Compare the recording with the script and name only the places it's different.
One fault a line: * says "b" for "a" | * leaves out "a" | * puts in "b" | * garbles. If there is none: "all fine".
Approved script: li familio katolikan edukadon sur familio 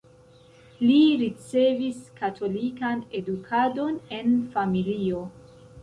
* says "ricevis" for "familio"
* says "en" for "sur"